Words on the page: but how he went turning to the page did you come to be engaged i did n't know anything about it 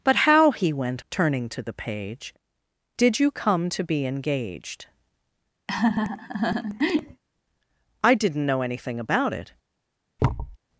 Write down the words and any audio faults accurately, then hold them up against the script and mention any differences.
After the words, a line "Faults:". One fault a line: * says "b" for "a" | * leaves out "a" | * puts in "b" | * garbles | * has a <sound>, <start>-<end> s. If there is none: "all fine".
but how he went turning to the page did you come to be engaged i did n't know anything about it
Faults:
* has a laugh, 5.7-7.2 s
* has a thud, 10.2-10.6 s